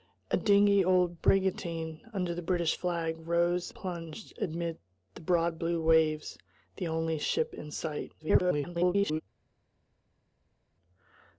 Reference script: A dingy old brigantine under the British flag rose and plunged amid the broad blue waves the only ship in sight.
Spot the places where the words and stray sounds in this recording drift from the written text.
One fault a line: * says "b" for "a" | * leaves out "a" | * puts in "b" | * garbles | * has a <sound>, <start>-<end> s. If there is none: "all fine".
* leaves out "and"
* garbles